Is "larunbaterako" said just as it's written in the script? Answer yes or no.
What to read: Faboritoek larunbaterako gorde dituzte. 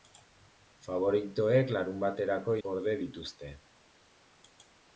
yes